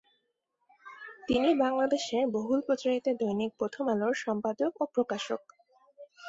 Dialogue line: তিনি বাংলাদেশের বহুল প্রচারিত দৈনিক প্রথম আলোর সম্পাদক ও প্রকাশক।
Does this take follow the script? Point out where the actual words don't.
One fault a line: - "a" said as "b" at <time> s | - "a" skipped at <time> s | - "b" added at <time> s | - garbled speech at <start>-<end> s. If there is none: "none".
none